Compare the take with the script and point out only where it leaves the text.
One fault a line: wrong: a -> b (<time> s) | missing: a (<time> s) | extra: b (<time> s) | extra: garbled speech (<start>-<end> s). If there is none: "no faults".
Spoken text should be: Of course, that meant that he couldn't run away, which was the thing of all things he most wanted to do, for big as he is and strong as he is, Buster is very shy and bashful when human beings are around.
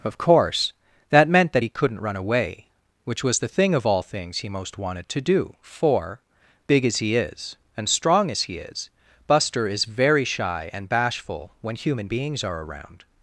no faults